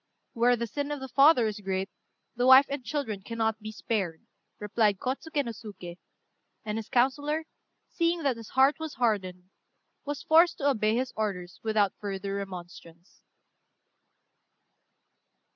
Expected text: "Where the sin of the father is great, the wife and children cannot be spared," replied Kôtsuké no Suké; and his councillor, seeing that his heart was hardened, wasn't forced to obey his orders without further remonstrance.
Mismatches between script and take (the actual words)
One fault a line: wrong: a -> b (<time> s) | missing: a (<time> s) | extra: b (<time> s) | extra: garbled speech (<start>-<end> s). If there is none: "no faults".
wrong: wasn't -> was (10.0 s)